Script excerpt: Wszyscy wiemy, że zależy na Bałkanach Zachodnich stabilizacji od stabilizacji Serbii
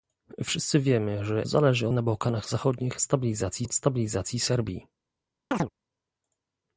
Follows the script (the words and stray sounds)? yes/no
no